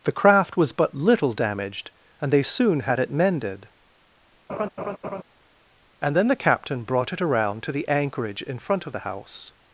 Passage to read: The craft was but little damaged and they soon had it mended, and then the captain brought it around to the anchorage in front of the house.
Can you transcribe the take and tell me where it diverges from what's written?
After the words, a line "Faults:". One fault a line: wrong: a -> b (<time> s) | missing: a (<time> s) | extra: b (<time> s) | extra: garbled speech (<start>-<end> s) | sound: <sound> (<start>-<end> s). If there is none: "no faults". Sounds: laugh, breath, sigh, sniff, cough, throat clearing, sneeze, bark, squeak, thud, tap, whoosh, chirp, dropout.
The craft was but little damaged and they soon had it mended, and then the captain brought it around to the anchorage in front of the house.
Faults:
sound: laugh (4.5-5.2 s)